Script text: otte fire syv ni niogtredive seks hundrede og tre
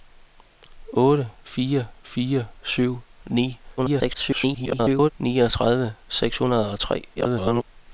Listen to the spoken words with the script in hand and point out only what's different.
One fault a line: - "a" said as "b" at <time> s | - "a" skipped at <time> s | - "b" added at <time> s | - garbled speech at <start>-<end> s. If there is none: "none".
- "fire" added at 2.0 s
- garbled speech at 3.8-5.1 s
- garbled speech at 7.1-7.6 s